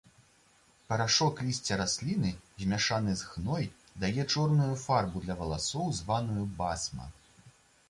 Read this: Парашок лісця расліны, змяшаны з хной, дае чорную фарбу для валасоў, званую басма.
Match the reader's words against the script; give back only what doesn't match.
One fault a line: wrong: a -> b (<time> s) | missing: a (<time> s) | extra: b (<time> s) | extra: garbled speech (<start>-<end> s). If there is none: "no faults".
no faults